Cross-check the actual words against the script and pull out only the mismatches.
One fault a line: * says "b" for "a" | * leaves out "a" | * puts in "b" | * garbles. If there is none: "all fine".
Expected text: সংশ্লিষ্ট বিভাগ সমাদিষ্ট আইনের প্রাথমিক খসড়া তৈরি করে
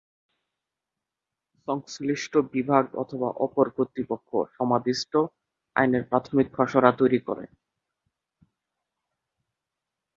* puts in "অথবা অপর কর্তৃপক্ষ"